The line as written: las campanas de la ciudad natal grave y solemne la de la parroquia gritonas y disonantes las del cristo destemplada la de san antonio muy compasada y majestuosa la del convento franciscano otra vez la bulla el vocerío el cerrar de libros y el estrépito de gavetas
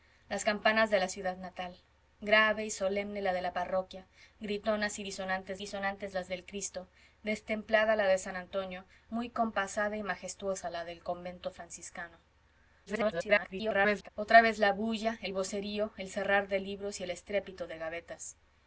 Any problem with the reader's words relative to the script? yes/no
yes